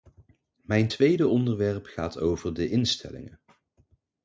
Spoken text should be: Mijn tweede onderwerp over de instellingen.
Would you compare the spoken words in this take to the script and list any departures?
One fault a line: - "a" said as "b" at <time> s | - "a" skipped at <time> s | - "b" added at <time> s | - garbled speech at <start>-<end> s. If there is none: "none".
- "gaat" added at 1.9 s